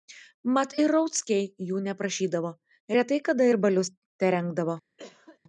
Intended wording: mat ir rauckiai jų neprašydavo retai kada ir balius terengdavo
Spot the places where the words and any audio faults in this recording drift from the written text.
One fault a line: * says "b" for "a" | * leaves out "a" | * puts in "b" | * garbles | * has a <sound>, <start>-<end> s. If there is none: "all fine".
* has a cough, 5.0-5.4 s